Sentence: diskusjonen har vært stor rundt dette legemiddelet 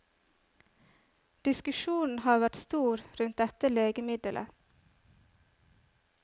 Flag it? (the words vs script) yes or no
no